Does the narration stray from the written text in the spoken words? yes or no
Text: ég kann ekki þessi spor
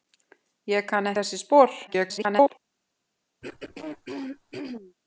yes